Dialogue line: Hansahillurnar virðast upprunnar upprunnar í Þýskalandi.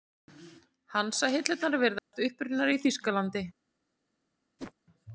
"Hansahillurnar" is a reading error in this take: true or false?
false